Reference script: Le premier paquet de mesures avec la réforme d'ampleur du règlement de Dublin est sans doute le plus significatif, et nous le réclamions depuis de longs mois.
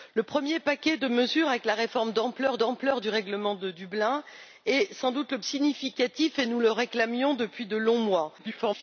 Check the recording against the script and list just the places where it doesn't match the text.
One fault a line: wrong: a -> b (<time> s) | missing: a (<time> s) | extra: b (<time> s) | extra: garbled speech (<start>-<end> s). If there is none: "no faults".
extra: d'ampleur (2.5 s)
missing: plus (5.4 s)
extra: garbled speech (8.4-8.8 s)